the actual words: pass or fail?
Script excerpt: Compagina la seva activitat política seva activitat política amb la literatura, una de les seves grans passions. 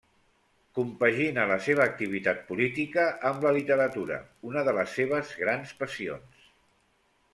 fail